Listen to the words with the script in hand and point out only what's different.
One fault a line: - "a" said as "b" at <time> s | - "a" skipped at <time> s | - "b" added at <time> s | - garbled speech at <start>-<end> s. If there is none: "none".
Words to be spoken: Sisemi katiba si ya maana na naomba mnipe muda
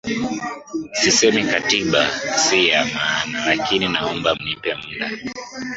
- "na" said as "lakini" at 3.5 s